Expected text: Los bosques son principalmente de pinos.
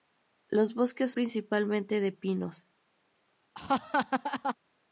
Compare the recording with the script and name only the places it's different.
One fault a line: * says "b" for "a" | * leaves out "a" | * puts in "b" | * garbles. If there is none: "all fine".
* leaves out "son"